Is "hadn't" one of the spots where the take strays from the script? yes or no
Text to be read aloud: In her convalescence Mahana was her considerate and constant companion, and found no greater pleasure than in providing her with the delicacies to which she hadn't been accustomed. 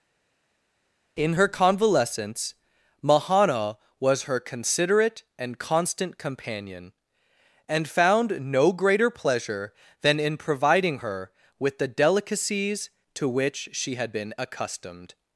yes